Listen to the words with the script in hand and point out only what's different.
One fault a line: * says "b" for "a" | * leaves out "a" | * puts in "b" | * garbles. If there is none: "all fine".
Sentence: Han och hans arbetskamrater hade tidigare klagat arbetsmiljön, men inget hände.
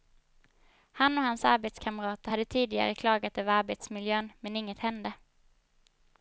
* puts in "över"